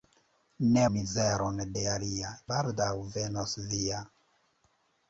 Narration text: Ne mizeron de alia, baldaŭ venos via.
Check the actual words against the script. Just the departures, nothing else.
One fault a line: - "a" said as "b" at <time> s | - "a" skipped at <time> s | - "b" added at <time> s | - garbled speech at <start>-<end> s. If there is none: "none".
none